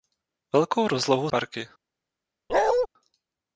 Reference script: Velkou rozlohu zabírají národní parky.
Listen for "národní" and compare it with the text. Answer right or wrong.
wrong